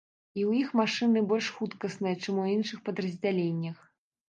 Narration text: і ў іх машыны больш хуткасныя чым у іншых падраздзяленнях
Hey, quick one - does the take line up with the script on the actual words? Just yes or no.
yes